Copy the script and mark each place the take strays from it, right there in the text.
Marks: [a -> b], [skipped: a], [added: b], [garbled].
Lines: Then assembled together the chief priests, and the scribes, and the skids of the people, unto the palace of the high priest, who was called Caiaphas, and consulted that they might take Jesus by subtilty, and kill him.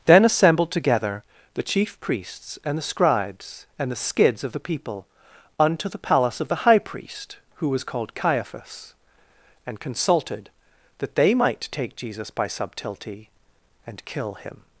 Then assembled together the chief priests, and the scribes, and the skids of the people, unto the palace of the high priest, who was called Caiaphas, and consulted that they might take Jesus by subtilty, and kill him.